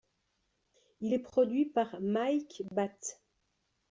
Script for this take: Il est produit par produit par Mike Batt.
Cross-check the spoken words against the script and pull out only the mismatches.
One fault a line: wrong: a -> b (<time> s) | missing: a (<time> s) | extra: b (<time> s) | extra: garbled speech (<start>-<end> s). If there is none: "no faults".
missing: produit par (1.9 s)